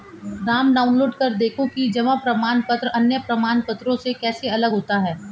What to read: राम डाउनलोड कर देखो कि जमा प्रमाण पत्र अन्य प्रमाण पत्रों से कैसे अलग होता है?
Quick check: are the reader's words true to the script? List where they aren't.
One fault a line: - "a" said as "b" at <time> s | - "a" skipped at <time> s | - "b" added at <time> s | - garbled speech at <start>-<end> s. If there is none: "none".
none